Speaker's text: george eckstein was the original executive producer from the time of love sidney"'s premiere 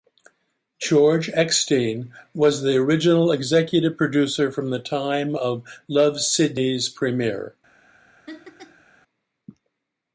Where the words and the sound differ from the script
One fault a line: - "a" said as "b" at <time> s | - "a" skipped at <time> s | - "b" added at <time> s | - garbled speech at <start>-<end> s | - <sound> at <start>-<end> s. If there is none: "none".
- laugh at 8.3-8.8 s